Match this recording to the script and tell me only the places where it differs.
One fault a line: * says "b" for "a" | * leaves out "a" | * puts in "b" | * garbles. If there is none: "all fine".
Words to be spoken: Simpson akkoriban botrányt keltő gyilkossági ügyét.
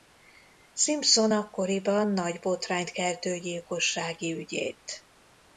* puts in "nagy"